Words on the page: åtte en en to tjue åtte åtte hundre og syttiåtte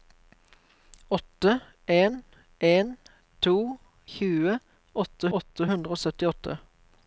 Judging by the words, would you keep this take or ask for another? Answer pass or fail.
pass